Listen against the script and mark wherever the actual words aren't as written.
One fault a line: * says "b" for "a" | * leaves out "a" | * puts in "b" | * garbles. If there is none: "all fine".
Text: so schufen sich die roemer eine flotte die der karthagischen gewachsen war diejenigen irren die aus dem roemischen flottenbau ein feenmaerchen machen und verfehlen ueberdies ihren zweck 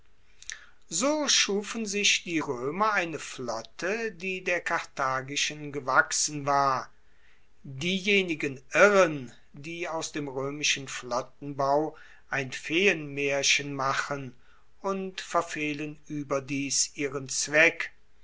all fine